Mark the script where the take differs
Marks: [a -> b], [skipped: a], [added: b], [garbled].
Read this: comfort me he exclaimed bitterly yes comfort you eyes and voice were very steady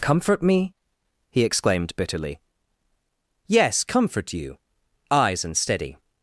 comfort me he exclaimed bitterly yes comfort you eyes and [skipped: voice were very] steady